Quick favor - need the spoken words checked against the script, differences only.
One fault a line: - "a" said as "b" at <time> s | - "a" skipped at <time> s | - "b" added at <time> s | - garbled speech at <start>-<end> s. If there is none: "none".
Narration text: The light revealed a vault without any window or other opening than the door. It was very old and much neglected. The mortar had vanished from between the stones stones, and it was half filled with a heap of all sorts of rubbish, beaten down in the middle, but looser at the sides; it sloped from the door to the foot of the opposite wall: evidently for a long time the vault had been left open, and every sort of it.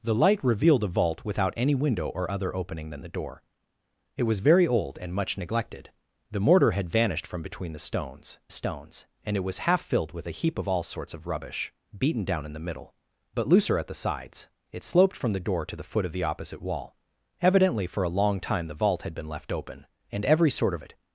none